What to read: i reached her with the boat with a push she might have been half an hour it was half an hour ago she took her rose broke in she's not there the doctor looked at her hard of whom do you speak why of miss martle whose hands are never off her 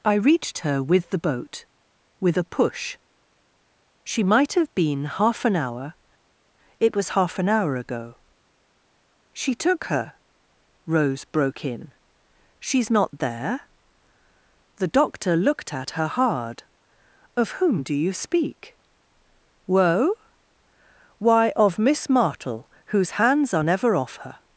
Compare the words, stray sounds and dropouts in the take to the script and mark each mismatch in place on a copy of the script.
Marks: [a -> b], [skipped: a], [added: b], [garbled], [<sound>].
i reached her with the boat with a push she might have been half an hour it was half an hour ago she took her rose broke in she's not there the doctor looked at her hard of whom do you speak [added: woe] why of miss martle whose hands are never off her